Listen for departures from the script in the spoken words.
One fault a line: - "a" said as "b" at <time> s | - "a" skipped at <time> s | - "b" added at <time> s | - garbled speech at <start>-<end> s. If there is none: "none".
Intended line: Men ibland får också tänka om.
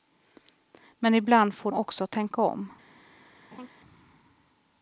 none